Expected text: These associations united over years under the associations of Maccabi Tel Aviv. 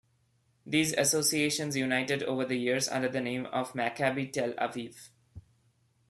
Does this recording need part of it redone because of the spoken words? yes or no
yes